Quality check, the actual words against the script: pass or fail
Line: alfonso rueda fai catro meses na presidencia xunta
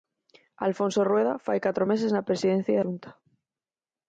pass